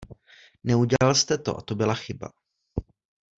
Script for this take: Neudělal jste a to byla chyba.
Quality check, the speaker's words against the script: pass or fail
fail